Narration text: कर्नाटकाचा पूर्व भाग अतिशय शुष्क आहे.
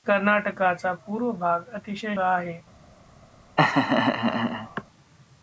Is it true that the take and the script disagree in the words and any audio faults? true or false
true